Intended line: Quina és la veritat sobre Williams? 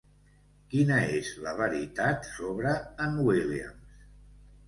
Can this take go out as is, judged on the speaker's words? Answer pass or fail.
fail